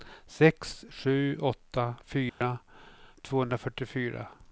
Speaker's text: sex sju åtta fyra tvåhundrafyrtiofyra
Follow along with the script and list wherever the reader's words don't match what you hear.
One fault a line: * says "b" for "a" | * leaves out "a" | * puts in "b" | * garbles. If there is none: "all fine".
all fine